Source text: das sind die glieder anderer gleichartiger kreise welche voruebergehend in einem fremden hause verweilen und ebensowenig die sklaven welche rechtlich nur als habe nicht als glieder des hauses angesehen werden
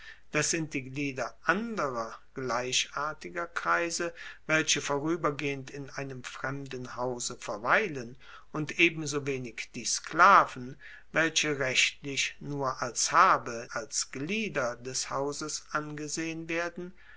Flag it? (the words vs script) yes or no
yes